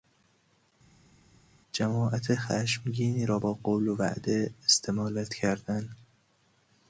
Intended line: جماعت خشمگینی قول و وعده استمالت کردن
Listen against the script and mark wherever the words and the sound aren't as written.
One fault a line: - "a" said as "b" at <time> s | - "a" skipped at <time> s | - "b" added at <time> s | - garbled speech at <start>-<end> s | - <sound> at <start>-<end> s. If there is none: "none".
- "را با" added at 3.2 s